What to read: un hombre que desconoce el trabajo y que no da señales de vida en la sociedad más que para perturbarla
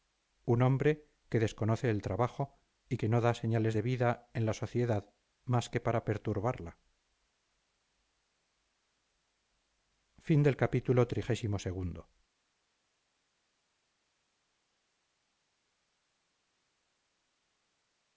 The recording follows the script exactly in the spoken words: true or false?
true